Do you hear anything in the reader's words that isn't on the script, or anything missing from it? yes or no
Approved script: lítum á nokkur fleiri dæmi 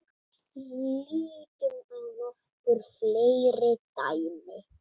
no